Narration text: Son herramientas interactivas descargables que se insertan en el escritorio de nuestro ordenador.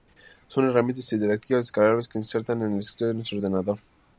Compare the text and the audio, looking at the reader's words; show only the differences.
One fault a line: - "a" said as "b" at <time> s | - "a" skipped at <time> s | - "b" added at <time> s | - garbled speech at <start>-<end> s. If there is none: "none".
none